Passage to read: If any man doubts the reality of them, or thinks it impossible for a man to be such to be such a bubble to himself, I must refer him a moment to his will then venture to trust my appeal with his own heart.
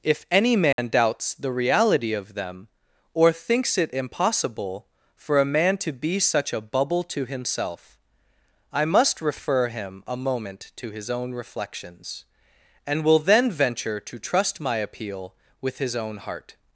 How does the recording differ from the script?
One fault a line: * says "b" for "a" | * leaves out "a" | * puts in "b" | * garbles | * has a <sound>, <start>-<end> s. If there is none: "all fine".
* has a dropout, 0.7-0.8 s
* leaves out "to be such"
* puts in "own reflections and"